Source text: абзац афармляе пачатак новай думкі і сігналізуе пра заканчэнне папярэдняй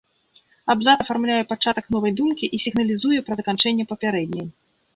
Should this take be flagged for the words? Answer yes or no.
no